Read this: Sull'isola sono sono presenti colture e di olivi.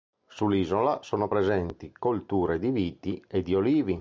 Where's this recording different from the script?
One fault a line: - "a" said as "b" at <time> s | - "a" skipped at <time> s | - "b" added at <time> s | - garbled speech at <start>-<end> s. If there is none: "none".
- "sono" skipped at 1.3 s
- "di viti" added at 2.6 s